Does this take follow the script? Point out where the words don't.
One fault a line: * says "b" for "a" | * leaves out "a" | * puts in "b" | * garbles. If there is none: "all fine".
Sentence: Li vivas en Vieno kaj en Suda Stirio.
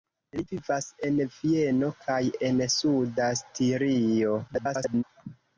* garbles